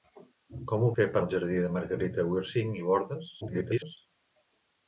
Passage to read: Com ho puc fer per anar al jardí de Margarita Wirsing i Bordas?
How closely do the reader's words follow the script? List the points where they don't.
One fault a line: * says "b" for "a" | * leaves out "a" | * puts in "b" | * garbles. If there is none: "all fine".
* leaves out "puc"
* leaves out "anar"
* garbles